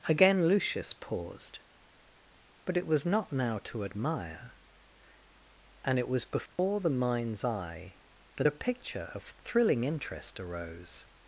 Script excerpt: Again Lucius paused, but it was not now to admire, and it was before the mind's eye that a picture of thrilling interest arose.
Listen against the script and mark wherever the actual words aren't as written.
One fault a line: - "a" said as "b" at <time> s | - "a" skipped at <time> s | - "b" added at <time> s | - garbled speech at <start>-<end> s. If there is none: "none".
none